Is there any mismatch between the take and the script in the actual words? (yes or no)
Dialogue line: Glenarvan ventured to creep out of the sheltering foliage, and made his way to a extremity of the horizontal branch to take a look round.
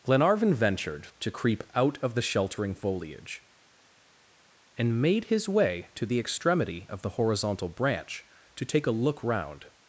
yes